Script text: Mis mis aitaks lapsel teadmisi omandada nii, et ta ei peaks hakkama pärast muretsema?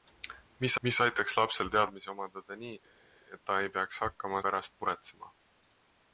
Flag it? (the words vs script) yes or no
no